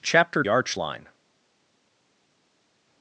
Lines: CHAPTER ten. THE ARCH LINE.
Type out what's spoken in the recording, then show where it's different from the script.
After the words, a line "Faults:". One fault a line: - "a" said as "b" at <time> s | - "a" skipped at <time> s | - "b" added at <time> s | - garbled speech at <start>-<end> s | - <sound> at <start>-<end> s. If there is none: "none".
CHAPTER ARCH LINE.
Faults:
- "ten THE" skipped at 0.4 s